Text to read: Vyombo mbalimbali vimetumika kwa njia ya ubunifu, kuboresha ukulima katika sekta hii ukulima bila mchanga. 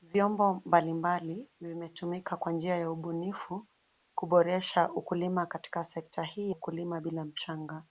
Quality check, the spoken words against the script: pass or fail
pass